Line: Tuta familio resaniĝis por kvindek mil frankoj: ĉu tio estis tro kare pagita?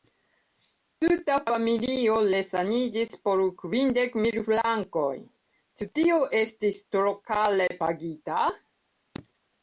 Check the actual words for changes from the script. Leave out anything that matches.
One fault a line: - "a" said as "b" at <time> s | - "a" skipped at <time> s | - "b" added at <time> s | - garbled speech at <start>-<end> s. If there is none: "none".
none